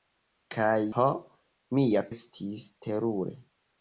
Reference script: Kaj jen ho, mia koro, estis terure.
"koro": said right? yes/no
no